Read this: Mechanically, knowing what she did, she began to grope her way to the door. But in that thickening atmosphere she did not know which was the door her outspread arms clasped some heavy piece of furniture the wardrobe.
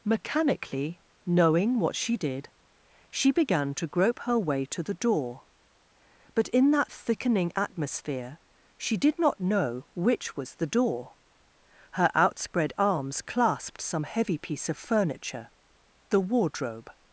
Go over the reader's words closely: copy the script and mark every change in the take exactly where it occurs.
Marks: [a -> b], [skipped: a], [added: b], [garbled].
Mechanically, knowing what she did, she began to grope her way to the door. But in that thickening atmosphere she did not know which was the door her outspread arms clasped some heavy piece of furniture the wardrobe.